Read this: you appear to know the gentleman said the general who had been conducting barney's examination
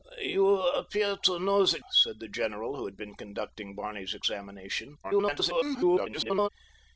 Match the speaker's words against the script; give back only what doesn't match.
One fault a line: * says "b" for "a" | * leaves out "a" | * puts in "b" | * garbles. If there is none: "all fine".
* leaves out "gentleman"
* garbles